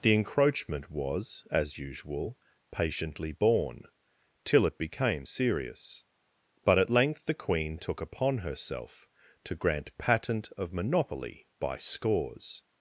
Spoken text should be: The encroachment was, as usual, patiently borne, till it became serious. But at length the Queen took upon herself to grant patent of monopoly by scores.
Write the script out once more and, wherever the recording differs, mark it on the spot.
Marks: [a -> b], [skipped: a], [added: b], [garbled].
The encroachment was, as usual, patiently borne, till it became serious. But at length the Queen took upon herself to grant patent of monopoly by scores.